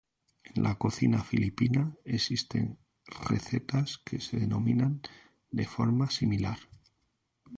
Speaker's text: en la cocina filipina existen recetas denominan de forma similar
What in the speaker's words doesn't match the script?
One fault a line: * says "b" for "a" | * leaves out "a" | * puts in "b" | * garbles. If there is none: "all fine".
* puts in "que se"